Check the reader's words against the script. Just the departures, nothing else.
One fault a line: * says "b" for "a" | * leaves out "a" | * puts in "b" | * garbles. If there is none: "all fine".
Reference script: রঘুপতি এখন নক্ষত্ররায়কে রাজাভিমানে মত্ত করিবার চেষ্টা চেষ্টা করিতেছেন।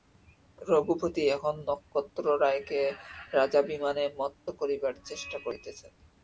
* leaves out "চেষ্টা"